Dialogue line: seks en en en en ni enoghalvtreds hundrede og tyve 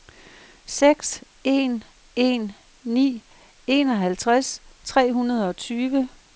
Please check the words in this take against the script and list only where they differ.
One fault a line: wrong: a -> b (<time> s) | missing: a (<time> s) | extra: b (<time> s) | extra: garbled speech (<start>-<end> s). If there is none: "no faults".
missing: en en (2.5 s)
extra: tre (4.8 s)